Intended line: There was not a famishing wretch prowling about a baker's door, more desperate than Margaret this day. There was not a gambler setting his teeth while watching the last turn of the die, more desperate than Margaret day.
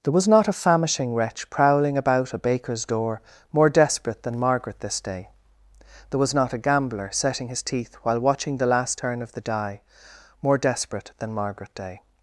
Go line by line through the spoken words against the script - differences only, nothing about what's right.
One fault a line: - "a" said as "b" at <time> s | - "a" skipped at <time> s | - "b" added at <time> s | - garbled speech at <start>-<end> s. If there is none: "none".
none